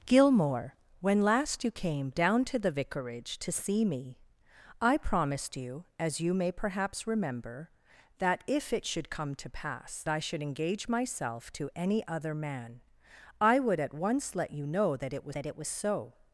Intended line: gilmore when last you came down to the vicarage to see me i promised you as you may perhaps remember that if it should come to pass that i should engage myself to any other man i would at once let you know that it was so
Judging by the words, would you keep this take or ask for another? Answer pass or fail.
fail